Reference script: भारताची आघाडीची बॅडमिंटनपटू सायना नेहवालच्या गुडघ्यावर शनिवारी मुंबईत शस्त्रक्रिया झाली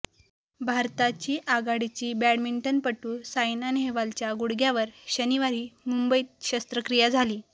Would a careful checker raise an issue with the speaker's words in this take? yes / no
no